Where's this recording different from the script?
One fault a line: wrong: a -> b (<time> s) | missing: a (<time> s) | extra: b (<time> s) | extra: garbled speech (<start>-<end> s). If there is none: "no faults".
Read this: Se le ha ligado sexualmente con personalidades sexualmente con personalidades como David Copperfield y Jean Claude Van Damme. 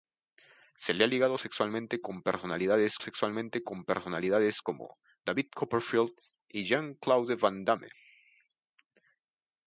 no faults